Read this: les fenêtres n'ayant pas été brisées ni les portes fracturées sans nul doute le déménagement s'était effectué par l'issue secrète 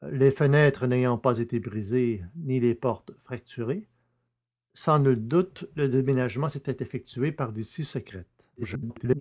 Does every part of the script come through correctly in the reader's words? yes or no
no